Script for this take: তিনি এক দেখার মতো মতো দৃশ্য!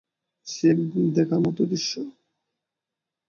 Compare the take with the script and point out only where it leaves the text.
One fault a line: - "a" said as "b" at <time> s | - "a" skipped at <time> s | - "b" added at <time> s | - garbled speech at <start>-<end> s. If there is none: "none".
- "তিনি" said as "সে" at 0.5 s
- "মতো" skipped at 1.6 s